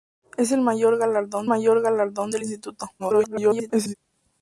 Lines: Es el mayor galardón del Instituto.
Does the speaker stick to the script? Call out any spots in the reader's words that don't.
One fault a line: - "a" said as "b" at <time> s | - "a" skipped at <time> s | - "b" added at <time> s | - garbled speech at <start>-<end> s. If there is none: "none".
- "mayor galardón" added at 1.4 s
- garbled speech at 3.0-3.9 s